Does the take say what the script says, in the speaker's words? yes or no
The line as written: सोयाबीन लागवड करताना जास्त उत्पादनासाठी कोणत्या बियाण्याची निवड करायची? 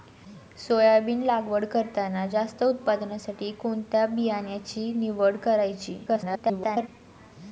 no